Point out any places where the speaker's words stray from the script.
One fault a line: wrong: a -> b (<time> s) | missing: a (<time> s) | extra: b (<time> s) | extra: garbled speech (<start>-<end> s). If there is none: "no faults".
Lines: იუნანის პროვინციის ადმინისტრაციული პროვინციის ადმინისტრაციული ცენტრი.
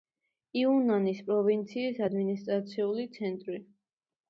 missing: პროვინციის ადმინისტრაციული (3.1 s)